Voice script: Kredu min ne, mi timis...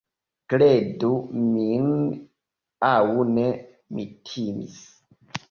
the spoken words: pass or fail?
fail